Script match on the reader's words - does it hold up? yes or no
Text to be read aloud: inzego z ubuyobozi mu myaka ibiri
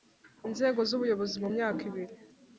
yes